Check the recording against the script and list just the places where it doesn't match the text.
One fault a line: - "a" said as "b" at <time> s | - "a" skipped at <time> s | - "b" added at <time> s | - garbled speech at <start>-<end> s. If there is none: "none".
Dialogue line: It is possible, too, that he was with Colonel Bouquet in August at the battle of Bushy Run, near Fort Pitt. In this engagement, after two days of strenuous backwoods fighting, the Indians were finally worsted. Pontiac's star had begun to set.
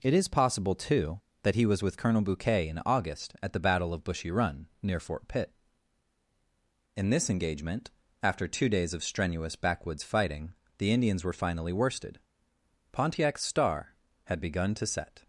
none